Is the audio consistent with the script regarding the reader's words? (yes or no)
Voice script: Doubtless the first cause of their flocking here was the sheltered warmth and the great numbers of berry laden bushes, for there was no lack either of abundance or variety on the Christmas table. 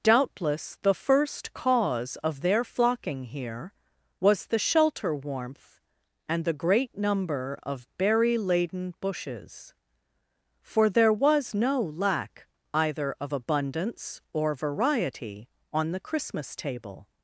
no